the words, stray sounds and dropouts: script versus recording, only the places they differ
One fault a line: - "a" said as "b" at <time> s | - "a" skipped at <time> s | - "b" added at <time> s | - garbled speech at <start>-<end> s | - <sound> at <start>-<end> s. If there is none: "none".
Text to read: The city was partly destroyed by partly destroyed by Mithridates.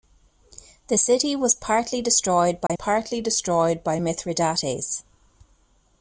- dropout at 2.7-2.7 s